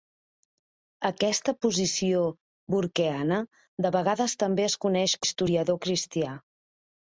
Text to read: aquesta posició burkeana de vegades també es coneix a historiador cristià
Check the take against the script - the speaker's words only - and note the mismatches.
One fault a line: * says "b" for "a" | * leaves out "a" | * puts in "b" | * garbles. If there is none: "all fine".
all fine